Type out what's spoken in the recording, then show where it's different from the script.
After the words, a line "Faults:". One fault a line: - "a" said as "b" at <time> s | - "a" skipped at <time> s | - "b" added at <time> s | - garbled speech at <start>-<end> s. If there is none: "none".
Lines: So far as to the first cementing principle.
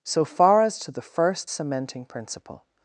So far as to the first cementing principle.
Faults:
none